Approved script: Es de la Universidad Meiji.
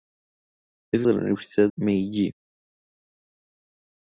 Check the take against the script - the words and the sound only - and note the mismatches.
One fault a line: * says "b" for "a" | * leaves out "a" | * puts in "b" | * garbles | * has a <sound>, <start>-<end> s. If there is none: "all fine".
all fine